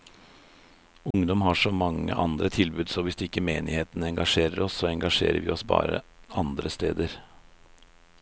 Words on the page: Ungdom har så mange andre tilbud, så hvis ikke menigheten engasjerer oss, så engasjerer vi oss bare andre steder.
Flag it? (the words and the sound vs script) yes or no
yes